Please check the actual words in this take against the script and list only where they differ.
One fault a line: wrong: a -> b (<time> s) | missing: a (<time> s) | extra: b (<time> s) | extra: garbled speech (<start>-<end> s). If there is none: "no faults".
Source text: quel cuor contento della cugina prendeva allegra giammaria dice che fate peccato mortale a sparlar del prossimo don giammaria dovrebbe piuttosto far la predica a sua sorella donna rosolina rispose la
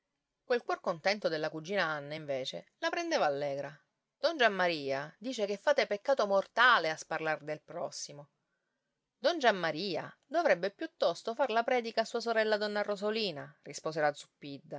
extra: anna invece la (1.9 s)
extra: don (4.2 s)